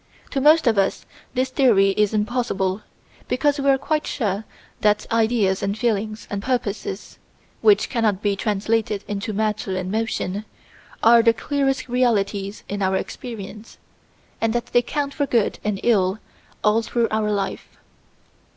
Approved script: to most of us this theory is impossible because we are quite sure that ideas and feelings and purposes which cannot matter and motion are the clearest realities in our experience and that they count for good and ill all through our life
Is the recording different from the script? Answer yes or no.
yes